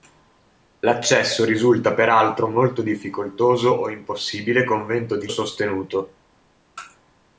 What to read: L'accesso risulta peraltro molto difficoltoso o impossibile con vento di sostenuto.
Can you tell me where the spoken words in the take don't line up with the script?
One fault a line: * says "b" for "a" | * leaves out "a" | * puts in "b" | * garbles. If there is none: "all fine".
all fine